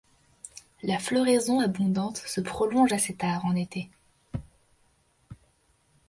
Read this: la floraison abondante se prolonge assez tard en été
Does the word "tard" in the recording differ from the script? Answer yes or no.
no